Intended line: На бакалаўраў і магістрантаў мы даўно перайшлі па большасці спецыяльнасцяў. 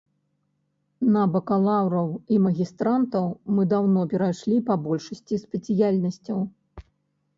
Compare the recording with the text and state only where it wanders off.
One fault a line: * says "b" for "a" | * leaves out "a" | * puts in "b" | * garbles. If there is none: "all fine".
all fine